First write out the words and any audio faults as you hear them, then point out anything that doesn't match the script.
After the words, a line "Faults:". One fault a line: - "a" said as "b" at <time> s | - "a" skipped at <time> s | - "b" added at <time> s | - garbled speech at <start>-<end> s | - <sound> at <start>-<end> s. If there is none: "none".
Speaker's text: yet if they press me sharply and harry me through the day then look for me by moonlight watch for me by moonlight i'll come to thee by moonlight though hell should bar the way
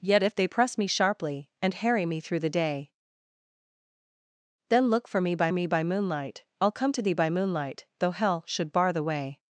yet if they press me sharply and harry me through the day then look for me by me by moonlight i'll come to thee by moonlight though hell should bar the way
Faults:
- "moonlight watch for" skipped at 5.5 s